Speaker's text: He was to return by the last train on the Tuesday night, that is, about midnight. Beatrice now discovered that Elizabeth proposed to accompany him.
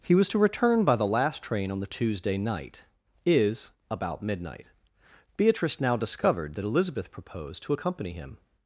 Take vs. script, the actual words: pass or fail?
fail